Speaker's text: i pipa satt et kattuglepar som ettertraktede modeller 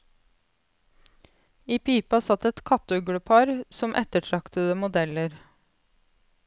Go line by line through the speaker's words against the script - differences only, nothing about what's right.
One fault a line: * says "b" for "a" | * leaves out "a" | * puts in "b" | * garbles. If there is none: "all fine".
all fine